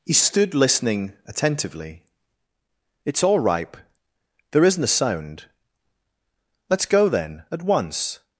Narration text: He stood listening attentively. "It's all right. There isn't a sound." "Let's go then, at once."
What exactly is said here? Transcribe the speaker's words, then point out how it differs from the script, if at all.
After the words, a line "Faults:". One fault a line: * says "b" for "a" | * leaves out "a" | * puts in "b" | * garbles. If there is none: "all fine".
He stood listening attentively. "It's all ripe. There isn't a sound." "Let's go then, at once."
Faults:
* says "ripe" for "right"